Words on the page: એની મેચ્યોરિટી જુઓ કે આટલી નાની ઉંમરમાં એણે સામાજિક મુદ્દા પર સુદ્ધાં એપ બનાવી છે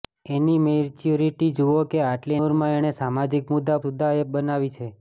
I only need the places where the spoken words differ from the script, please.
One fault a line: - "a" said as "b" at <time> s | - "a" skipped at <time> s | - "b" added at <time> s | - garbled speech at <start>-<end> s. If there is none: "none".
- "નાની" skipped at 2.4 s
- "પર" skipped at 3.8 s